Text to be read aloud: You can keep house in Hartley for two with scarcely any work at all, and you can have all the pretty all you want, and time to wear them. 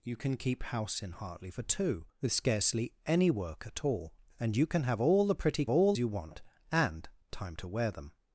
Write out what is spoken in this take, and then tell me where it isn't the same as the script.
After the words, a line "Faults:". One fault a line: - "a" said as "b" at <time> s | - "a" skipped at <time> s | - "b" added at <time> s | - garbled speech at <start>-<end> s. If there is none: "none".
You can keep house in Hartley for two with scarcely any work at all, and you can have all the pretty all you want, and time to wear them.
Faults:
none